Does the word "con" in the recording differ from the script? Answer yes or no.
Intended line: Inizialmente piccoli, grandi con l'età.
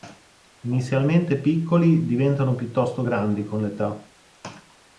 no